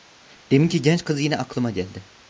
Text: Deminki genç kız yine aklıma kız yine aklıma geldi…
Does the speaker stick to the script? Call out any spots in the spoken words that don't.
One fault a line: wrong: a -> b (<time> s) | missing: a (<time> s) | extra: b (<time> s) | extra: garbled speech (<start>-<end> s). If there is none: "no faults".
missing: kız yine aklıma (1.7 s)